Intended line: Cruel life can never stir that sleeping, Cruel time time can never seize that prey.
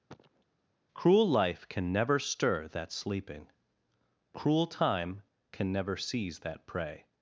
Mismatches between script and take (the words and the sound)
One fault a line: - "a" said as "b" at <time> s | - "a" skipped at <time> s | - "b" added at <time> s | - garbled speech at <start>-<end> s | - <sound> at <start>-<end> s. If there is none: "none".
- cough at 0.1-0.4 s
- "time" skipped at 5.2 s